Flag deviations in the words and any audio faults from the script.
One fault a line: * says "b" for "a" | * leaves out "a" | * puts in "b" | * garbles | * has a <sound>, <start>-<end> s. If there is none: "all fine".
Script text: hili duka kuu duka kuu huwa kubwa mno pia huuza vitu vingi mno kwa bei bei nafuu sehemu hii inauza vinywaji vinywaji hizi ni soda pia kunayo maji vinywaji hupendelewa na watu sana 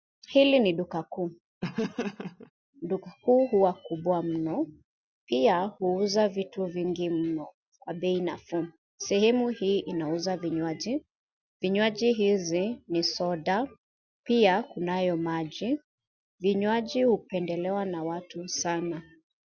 * puts in "ni"
* has a laugh, 1.6-2.5 s
* leaves out "bei"